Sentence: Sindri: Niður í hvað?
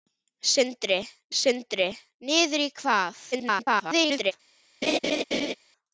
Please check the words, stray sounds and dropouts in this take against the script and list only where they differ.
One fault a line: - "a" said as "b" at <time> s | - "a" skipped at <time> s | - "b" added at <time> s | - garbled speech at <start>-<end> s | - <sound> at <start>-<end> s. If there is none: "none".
- "sindri" added at 1.4 s
- garbled speech at 3.3-4.3 s
- laugh at 4.8-5.5 s